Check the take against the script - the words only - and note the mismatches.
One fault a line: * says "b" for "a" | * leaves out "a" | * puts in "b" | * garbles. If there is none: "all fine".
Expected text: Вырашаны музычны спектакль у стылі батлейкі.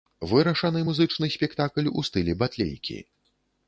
all fine